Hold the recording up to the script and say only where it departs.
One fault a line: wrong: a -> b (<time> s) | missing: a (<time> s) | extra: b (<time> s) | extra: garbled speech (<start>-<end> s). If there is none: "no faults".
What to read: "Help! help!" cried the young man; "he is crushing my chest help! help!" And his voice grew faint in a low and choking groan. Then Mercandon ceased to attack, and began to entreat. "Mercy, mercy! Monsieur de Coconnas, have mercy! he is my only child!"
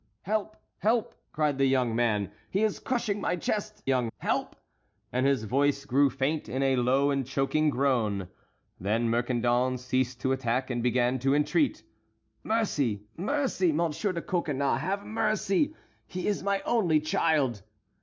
wrong: help -> young (3.8 s)